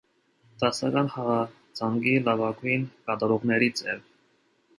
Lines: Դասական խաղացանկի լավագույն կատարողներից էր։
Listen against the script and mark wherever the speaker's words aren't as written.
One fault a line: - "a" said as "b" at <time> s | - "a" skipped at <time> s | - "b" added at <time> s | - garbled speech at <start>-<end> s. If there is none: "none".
none